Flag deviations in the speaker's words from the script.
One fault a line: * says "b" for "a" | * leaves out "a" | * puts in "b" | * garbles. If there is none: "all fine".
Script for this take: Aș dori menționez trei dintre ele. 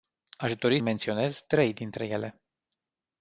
all fine